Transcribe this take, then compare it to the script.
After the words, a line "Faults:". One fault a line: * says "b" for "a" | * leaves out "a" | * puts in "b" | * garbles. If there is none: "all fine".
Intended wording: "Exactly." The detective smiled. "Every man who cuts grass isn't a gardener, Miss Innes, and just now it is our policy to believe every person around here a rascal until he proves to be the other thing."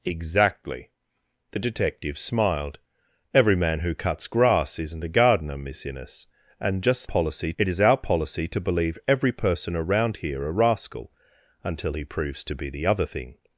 "Exactly." The detective smiled. "Every man who cuts grass isn't a gardener, Miss Innes, and just policy it is our policy to believe every person around here a rascal until he proves to be the other thing."
Faults:
* says "policy" for "now"